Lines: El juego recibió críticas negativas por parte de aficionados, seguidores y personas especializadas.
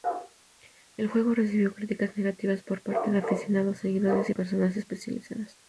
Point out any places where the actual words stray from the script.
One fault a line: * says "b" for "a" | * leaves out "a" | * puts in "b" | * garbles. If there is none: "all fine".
all fine